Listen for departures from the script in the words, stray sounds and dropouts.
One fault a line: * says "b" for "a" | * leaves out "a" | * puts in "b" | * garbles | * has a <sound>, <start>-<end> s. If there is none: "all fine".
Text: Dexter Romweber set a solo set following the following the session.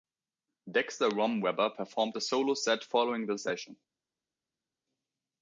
* says "performed" for "set"
* leaves out "following the"